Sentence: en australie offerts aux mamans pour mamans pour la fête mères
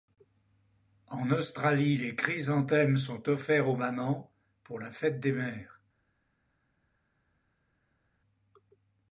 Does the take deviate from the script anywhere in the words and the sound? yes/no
yes